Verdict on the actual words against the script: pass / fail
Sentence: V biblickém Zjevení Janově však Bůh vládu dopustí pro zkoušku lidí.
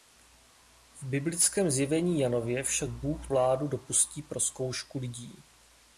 pass